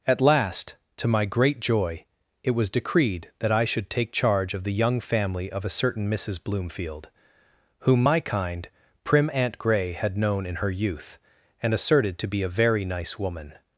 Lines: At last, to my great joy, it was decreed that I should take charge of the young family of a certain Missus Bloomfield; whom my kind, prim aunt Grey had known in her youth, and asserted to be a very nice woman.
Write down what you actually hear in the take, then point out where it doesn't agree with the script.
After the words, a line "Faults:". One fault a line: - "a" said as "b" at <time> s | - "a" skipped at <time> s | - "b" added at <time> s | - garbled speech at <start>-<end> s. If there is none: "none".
At last, to my great joy, it was decreed that I should take charge of the young family of a certain Missus Bloomfield; whom my kind, prim aunt Grey had known in her youth, and asserted to be a very nice woman.
Faults:
none